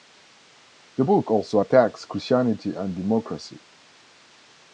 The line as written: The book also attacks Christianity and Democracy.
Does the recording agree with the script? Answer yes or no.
yes